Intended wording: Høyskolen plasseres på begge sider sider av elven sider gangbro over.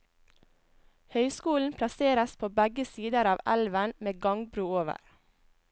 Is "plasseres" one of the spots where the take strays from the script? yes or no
no